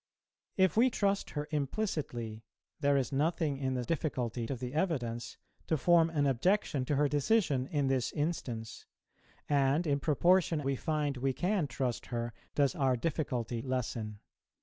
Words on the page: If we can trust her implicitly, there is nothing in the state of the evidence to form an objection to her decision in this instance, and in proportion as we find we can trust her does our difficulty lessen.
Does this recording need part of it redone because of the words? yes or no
yes